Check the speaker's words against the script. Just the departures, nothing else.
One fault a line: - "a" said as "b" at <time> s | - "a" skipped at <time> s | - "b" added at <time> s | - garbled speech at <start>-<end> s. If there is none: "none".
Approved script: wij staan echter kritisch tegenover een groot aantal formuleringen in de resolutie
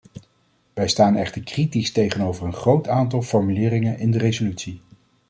none